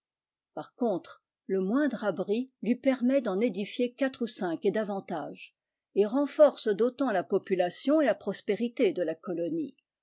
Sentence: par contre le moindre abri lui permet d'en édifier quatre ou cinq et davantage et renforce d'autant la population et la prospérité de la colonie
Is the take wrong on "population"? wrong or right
right